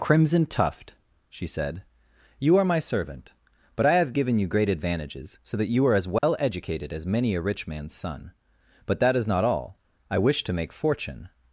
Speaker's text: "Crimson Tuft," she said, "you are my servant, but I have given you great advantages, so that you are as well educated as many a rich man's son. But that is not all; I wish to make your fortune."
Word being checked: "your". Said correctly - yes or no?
no